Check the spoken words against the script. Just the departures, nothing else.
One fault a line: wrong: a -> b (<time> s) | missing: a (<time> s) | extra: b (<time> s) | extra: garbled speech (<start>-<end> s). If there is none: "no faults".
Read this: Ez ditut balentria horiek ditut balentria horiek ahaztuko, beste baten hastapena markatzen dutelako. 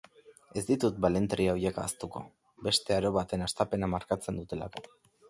missing: ditut balentria horiek (1.8 s)
extra: aro (3.0 s)